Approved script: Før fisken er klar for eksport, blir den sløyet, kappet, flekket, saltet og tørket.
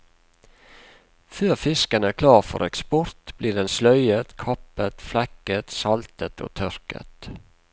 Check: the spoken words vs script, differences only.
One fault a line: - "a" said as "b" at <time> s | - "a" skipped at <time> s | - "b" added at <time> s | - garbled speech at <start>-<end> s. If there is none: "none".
none